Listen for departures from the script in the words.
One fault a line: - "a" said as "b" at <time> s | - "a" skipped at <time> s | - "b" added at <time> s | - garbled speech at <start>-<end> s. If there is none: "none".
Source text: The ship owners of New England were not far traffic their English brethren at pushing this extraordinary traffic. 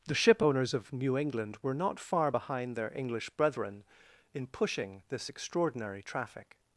- "traffic" said as "behind" at 2.3 s
- "at" said as "in" at 4.3 s